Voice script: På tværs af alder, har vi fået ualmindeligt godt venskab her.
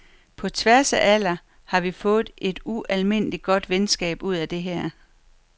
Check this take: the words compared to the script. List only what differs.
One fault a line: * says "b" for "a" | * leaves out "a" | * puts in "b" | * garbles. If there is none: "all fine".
* puts in "et"
* puts in "ud af det"